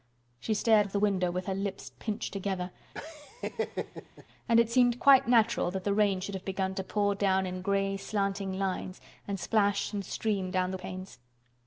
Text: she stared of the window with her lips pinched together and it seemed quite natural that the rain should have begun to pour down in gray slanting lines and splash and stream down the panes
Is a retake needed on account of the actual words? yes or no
no